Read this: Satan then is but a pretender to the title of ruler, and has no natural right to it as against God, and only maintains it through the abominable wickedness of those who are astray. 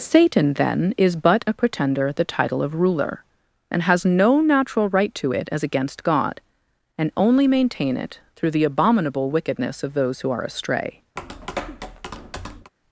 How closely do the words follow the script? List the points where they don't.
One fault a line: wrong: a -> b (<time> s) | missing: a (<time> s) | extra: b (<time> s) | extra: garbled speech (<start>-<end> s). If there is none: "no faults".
missing: to (2.1 s)
wrong: maintains -> maintain (7.5 s)